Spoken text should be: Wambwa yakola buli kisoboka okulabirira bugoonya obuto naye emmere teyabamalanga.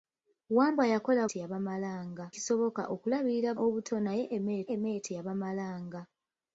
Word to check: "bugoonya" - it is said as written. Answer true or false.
false